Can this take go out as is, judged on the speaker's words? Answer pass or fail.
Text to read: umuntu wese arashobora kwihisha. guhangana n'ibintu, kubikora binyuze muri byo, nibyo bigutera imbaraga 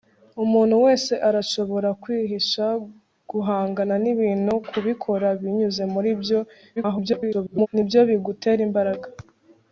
fail